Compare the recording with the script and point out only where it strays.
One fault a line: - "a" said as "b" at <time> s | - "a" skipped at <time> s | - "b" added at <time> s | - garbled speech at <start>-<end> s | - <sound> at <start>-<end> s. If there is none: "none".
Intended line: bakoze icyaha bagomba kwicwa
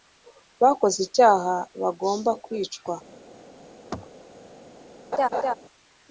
- throat clearing at 3.9-4.1 s
- laugh at 5.1-5.5 s